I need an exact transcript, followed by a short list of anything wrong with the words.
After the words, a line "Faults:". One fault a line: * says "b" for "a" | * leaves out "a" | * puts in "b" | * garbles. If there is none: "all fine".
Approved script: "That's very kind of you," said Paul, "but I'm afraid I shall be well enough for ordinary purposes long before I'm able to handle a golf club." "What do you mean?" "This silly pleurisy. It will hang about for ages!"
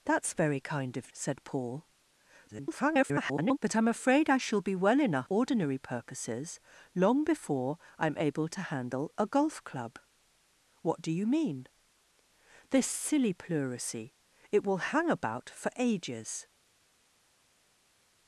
"That's very kind of," said Paul, [garbled] "but I'm afraid I shall be well enough ordinary purposes long before I'm able to handle a golf club." "What do you mean?" "This silly pleurisy. It will hang about for ages!"
Faults:
* leaves out "you"
* garbles
* leaves out "for"